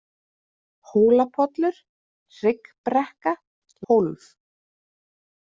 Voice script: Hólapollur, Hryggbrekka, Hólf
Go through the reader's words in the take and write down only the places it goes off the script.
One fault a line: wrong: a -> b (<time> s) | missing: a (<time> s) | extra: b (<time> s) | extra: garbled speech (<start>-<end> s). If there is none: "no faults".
no faults